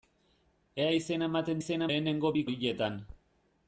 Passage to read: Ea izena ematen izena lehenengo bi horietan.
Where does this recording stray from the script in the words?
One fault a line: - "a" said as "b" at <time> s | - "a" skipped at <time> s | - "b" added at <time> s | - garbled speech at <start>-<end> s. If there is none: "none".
none